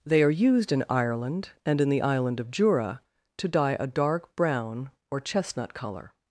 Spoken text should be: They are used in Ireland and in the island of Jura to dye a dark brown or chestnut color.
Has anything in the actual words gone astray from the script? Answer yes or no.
no